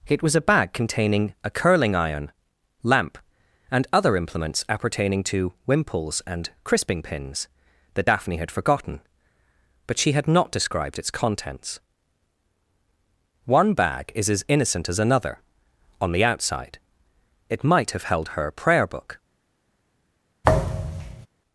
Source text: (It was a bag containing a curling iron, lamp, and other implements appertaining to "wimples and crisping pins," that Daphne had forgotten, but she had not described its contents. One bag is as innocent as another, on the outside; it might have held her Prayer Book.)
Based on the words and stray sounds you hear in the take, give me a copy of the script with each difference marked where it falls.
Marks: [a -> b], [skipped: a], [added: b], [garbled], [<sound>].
(It was a bag containing a curling iron, lamp, and other implements appertaining to "wimples and crisping pins," that Daphne had forgotten, but she had not described its contents. One bag is as innocent as another, on the outside; it might have held her Prayer Book.) [thud]